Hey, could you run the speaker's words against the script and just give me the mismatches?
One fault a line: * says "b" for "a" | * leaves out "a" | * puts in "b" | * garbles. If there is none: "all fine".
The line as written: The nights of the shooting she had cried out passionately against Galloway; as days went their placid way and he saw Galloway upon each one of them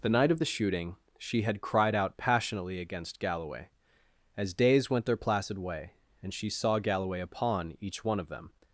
* says "night" for "nights"
* says "she" for "he"